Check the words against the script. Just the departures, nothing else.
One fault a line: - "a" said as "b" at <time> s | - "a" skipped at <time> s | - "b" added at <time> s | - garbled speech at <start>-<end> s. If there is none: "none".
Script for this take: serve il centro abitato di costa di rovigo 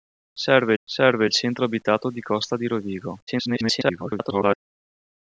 - "serve" added at 0.8 s
- garbled speech at 3.3-4.6 s